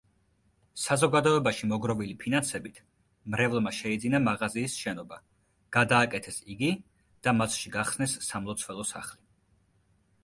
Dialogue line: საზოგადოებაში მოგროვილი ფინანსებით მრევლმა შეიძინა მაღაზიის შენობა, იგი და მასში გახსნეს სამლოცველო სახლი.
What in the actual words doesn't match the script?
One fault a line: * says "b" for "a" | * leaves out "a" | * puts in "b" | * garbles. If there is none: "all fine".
* puts in "გადააკეთეს"